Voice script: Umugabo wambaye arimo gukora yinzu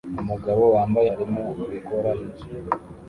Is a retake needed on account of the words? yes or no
no